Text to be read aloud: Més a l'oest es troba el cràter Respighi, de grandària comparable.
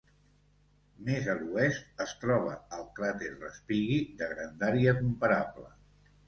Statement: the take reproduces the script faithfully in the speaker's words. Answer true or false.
true